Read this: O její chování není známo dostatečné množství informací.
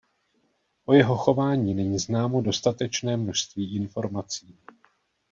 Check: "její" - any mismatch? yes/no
yes